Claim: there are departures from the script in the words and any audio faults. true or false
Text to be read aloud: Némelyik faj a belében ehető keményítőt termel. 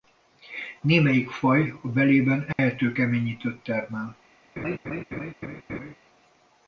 true